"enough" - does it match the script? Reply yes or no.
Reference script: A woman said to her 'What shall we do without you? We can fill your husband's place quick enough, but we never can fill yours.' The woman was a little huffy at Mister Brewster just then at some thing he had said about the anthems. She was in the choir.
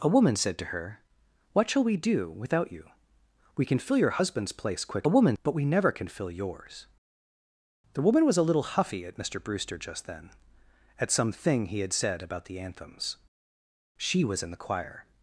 no